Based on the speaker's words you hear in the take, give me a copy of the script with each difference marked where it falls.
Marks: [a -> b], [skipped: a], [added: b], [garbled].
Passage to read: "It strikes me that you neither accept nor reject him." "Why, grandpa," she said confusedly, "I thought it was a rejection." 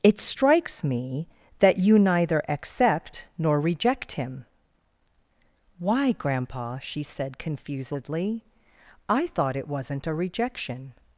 "It strikes me that you neither accept nor reject him." "Why, grandpa," she said confusedly, "I thought it [was -> wasn't] a rejection."